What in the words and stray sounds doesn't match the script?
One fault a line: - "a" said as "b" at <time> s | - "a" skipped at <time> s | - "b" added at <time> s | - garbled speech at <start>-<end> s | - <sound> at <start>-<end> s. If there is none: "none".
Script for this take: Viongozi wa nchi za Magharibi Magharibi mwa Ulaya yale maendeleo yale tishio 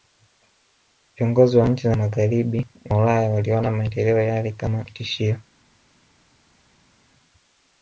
- "Magharibi" skipped at 2.6 s
- "yale" said as "waliona" at 3.3 s
- "kama" added at 4.5 s